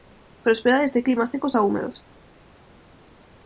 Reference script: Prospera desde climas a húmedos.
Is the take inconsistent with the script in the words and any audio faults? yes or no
yes